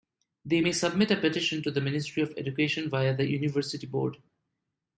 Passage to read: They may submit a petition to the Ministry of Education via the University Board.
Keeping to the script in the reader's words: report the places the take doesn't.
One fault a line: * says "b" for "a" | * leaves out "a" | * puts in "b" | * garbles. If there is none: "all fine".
all fine